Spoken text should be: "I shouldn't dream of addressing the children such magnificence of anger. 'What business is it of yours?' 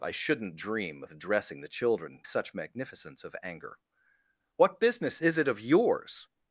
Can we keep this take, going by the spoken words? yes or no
yes